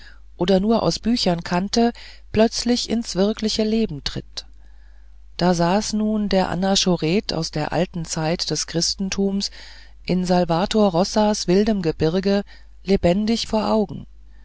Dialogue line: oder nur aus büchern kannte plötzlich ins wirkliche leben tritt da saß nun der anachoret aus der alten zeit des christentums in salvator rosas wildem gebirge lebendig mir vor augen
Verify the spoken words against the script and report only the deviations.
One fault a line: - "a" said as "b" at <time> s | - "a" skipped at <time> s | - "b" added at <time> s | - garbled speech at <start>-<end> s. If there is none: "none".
- "mir" skipped at 13.5 s